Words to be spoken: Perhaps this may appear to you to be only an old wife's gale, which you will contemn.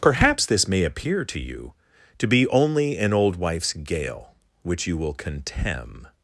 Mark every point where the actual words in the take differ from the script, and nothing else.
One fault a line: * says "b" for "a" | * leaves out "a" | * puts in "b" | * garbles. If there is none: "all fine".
all fine